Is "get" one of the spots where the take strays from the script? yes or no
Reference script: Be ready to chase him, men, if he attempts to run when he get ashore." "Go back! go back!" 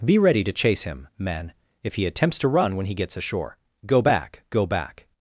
yes